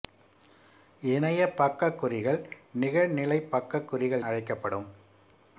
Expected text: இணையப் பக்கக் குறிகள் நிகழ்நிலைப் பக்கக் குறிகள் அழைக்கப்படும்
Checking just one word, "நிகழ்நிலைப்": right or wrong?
right